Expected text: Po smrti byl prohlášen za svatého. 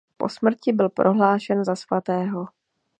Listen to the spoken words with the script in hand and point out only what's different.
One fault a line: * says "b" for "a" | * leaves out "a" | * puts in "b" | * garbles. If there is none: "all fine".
all fine